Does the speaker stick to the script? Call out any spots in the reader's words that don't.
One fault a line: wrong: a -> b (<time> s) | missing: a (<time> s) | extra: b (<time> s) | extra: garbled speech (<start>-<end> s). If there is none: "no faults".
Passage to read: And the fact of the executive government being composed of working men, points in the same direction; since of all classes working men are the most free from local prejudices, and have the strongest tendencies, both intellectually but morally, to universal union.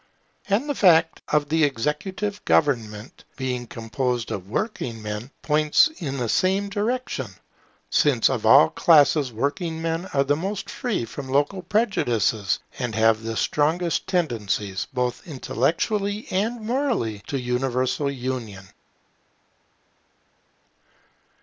wrong: but -> and (16.3 s)